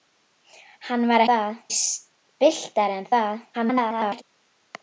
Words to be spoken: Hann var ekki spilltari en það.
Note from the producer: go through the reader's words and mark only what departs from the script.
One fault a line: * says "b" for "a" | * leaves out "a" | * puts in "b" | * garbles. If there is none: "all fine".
* says "það" for "ekki"
* garbles